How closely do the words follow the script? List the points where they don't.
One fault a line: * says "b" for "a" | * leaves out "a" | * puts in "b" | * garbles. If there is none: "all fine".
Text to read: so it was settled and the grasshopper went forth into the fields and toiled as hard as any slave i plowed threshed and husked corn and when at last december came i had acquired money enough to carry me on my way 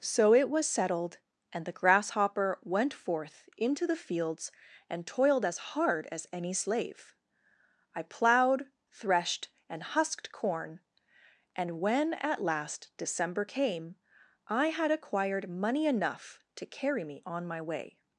all fine